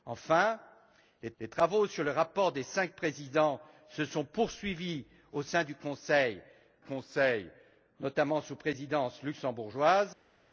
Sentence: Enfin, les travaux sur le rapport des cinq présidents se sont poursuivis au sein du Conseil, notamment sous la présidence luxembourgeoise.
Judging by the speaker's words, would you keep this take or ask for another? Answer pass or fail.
fail